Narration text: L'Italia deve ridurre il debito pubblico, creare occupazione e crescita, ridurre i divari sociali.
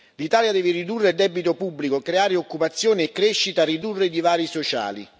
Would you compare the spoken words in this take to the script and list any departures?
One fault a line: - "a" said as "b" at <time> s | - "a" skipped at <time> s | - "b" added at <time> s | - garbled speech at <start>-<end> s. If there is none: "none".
none